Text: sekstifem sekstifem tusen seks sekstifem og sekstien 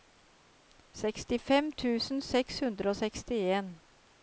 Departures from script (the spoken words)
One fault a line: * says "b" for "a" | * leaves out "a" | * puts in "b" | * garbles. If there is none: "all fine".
* leaves out "sekstifem"
* says "hundre" for "sekstifem"